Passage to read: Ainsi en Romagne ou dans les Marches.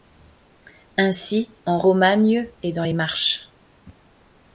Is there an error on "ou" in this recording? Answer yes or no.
yes